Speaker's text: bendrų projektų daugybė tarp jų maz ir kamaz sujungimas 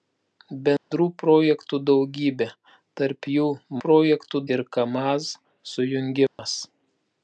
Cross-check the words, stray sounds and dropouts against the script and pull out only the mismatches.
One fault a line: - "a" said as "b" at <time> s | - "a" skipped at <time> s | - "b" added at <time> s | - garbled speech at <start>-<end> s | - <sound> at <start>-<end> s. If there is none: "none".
- dropout at 0.8-0.9 s
- "maz" said as "projektų" at 3.8 s
- dropout at 6.3-6.4 s